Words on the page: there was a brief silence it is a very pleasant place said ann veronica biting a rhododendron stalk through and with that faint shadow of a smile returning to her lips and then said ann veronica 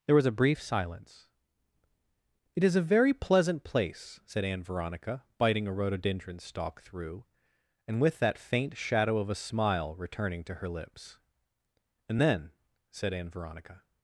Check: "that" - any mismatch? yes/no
no